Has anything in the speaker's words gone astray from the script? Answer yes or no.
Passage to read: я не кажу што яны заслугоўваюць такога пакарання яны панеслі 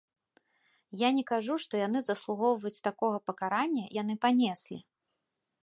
no